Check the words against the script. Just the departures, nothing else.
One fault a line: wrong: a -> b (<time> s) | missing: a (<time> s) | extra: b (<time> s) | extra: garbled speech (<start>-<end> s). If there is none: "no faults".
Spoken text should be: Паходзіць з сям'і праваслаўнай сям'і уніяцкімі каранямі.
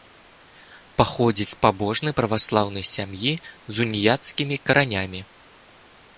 wrong: сям'і -> пабожнай (1.7 s)
extra: з (3.7 s)